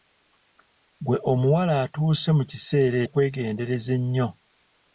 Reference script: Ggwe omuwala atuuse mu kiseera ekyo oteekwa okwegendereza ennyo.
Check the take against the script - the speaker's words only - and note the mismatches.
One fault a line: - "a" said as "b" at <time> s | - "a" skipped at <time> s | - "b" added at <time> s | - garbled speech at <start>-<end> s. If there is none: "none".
- "ekyo oteekwa" skipped at 3.0 s